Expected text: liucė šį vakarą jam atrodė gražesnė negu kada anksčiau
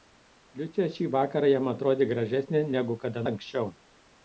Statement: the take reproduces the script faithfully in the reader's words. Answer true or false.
true